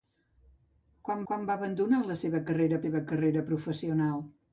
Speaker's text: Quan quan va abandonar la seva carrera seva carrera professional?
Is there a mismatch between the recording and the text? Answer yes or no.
no